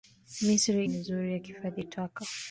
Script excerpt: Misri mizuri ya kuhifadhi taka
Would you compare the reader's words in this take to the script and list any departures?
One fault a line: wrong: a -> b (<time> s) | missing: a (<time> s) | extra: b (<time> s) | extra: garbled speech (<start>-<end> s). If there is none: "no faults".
no faults